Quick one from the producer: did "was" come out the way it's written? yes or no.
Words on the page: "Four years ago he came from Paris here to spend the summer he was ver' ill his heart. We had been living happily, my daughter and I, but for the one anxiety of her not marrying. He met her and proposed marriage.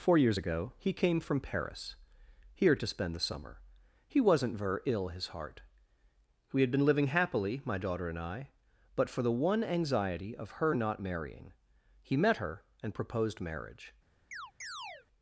no